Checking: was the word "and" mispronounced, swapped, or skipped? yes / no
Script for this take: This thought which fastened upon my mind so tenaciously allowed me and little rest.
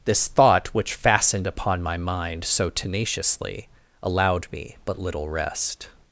yes